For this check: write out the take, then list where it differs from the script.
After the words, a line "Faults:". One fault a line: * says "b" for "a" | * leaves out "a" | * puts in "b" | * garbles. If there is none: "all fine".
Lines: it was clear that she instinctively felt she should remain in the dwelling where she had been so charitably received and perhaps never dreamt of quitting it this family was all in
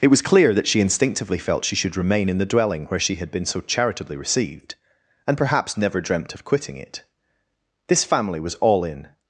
it was clear that she instinctively felt she should remain in the dwelling where she had been so charitably received and perhaps never dreamt of quitting it this family was all in
Faults:
all fine